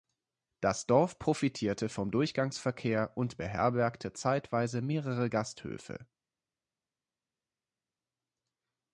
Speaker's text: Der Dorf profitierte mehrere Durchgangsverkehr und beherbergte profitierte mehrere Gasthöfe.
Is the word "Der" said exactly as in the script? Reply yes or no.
no